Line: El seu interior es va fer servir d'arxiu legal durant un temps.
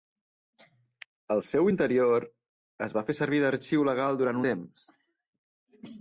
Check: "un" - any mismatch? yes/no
yes